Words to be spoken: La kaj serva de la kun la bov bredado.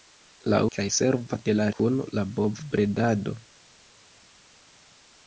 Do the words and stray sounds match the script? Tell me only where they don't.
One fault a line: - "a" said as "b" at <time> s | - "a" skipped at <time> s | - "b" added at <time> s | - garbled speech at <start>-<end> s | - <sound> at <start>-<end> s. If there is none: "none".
none